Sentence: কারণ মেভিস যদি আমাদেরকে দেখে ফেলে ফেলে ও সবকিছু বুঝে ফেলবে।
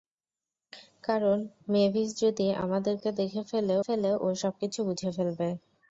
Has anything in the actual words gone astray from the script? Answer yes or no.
no